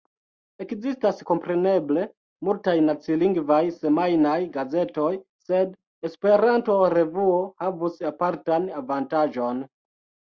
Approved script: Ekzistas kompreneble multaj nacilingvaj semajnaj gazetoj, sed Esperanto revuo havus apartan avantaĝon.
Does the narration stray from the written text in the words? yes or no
no